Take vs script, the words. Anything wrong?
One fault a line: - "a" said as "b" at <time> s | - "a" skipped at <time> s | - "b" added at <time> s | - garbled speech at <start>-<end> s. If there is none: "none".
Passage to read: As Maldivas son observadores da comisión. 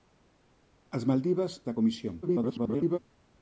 - "son observadores" skipped at 1.5 s
- garbled speech at 2.2-3.0 s